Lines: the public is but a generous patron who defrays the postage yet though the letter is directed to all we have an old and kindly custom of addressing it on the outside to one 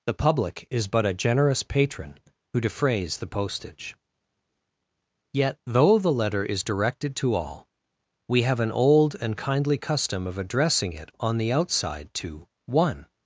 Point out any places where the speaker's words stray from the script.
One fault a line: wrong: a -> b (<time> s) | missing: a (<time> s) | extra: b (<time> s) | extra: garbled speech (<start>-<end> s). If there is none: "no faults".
no faults